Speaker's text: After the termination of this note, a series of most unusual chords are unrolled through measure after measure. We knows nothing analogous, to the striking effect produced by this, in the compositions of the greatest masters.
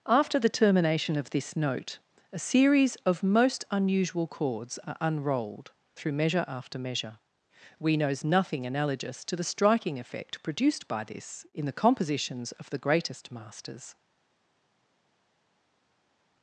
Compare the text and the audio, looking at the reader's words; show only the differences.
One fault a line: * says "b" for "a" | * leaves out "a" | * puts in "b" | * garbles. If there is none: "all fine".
all fine